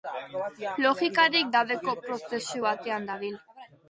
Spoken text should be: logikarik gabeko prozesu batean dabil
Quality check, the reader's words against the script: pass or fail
pass